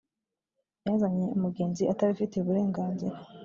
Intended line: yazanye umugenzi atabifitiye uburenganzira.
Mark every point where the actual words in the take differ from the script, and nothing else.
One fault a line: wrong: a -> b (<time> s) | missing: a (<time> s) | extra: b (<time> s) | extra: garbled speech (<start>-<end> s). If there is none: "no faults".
no faults